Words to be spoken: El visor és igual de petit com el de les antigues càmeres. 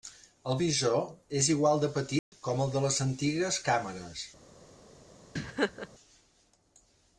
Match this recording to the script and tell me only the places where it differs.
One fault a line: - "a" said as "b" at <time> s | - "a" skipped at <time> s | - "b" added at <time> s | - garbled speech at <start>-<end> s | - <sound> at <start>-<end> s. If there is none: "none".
- dropout at 2.2-2.3 s
- laugh at 5.4-5.9 s